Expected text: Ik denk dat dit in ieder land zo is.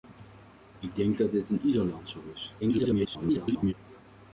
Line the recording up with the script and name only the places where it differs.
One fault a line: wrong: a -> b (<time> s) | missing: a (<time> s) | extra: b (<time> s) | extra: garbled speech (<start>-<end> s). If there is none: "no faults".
extra: garbled speech (2.6-3.7 s)